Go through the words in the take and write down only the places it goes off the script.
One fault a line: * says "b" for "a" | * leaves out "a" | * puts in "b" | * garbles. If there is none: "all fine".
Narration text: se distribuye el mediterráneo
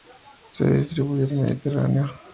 all fine